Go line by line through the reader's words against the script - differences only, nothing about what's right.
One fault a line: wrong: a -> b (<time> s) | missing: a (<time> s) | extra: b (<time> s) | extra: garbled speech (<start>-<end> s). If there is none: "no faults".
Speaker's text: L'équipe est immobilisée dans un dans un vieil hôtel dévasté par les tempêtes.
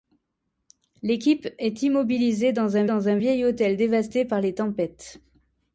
no faults